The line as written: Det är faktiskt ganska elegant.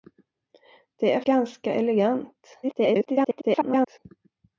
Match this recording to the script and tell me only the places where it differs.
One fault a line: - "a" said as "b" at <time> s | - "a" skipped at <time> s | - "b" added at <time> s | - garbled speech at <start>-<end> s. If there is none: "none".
- "faktiskt" skipped at 1.2 s
- garbled speech at 2.6-4.0 s